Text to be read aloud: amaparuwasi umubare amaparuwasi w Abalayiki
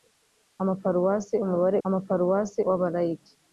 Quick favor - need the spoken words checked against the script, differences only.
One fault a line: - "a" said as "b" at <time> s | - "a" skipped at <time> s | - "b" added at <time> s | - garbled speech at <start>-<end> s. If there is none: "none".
none